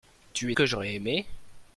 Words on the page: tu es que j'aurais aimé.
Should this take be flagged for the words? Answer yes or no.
no